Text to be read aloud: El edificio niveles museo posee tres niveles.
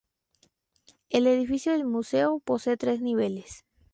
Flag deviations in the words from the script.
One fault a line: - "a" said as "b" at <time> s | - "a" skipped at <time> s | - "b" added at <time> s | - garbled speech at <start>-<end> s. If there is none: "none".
- "niveles" said as "del" at 1.7 s